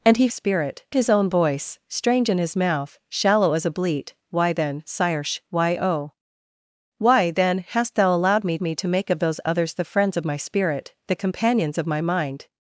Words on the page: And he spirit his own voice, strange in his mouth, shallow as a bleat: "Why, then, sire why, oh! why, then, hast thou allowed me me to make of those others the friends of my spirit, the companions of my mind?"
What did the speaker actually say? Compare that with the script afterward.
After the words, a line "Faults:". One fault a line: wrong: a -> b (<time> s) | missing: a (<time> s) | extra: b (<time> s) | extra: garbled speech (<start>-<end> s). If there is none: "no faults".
And he spirit his own voice, strange in his mouth, shallow as a bleat: "Why, then, sire why, oh! why, then, hast thou allowed me me to make of those others the friends of my spirit, the companions of my mind?"
Faults:
no faults